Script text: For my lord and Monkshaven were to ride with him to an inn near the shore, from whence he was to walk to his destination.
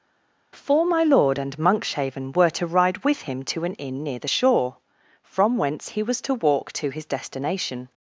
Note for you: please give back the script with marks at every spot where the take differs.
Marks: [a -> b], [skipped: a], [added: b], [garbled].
For my lord and Monkshaven were to ride with him to an inn near the shore, from whence he was to walk to his destination.